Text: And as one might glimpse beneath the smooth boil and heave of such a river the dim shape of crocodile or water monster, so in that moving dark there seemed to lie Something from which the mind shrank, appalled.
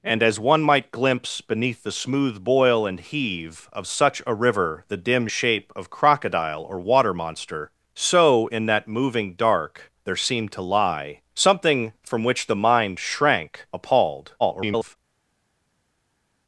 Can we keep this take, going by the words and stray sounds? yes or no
no